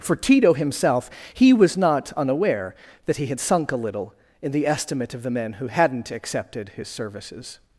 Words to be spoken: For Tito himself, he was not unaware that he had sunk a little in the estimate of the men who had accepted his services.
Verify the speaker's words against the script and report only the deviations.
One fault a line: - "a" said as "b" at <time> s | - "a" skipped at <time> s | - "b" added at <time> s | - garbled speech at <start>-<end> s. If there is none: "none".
- "had" said as "hadn't" at 5.7 s